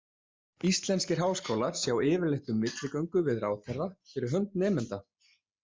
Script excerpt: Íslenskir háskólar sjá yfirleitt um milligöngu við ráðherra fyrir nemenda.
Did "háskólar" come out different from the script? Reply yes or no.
no